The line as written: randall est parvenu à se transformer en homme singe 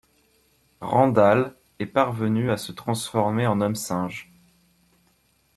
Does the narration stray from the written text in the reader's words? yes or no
no